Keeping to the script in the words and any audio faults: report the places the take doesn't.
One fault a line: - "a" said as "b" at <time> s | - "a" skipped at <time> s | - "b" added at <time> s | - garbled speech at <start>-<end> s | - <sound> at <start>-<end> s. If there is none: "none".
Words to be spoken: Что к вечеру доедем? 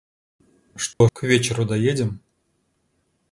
- dropout at 0.9-1.0 s